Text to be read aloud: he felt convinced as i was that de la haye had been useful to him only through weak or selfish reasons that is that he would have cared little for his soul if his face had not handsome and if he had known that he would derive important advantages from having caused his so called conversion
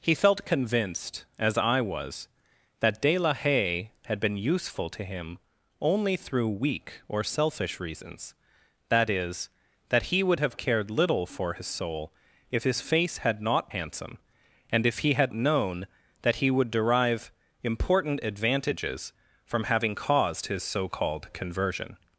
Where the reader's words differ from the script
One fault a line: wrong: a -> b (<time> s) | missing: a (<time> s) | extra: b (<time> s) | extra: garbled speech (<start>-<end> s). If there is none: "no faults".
no faults